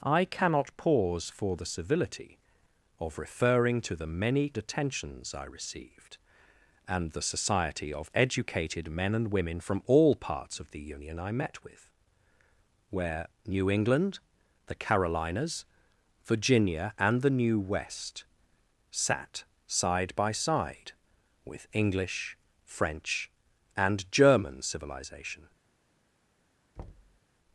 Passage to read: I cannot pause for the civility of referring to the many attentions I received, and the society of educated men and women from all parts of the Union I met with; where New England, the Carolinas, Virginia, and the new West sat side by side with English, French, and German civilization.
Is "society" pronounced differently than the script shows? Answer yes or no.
no